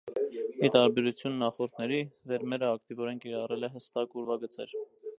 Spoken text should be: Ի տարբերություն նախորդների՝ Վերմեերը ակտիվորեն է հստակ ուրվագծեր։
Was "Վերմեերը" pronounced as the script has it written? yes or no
yes